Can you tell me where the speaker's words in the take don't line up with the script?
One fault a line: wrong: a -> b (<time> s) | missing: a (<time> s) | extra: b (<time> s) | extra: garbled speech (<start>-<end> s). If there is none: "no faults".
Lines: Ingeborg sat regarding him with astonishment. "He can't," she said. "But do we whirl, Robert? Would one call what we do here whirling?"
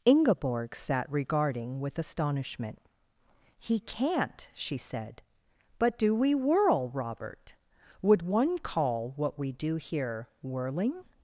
missing: him (1.8 s)